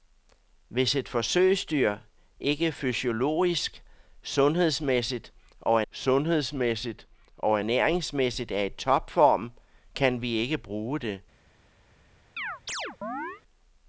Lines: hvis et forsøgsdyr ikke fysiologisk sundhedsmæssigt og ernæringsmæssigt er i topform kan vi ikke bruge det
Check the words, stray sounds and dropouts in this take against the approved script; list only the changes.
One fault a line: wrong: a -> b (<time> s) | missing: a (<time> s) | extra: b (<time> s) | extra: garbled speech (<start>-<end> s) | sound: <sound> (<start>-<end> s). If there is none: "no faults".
extra: sundhedsmæssigt og (5.9 s)
sound: chirp (12.4-13.4 s)